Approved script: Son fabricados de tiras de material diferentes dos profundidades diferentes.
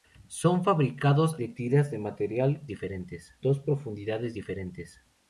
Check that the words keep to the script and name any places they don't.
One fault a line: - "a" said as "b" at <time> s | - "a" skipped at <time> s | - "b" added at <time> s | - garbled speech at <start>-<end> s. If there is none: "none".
none